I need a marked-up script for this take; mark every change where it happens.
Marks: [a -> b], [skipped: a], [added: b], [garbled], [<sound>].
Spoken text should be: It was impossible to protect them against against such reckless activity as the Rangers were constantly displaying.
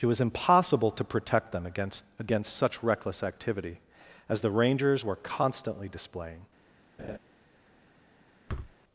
It was impossible to protect them against against such reckless activity as the Rangers were constantly displaying. [laugh] [thud]